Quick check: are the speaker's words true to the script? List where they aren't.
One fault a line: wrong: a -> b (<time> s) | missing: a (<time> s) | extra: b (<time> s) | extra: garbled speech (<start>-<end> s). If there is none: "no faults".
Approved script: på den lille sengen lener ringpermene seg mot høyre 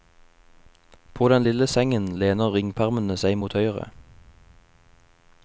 no faults